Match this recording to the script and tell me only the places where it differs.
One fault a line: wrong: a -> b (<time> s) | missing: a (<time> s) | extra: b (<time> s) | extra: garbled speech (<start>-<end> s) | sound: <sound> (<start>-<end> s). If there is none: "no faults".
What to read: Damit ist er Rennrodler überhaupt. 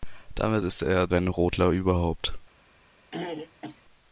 sound: throat clearing (3.1-3.8 s)